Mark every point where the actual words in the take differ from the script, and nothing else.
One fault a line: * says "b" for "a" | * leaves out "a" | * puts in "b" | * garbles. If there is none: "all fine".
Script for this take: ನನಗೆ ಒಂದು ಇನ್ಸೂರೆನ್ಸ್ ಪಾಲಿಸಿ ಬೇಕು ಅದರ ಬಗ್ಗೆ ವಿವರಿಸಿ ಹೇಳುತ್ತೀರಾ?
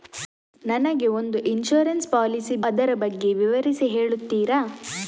* leaves out "ಬೇಕು"